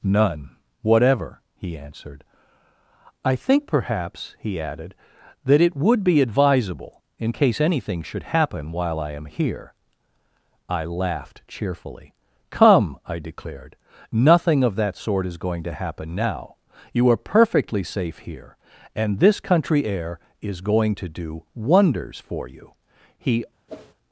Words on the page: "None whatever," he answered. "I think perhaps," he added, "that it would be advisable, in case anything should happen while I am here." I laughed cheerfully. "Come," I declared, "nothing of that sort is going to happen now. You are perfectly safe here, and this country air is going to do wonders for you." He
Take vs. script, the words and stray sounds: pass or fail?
fail